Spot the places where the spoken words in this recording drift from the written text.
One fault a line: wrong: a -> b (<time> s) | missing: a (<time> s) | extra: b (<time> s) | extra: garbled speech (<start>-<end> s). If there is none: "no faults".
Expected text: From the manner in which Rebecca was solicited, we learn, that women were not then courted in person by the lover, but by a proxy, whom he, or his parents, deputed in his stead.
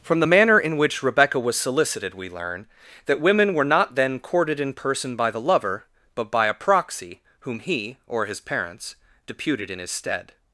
no faults